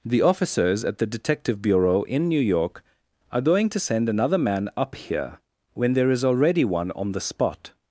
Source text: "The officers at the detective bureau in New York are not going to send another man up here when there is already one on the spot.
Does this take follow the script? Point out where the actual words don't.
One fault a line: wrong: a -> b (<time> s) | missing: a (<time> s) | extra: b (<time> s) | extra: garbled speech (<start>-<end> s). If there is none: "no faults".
missing: not (3.4 s)